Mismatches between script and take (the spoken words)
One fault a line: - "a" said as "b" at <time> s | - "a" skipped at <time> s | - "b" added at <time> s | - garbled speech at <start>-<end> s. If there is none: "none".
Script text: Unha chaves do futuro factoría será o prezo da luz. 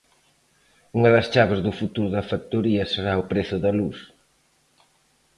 - "das" added at 1.1 s
- "da" added at 2.2 s